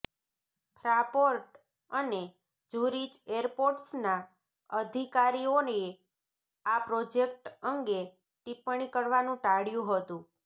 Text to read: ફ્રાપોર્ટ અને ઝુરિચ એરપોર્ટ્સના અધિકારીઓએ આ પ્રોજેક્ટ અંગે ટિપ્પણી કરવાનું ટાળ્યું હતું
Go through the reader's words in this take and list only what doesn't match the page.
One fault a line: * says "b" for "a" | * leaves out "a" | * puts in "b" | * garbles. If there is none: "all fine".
all fine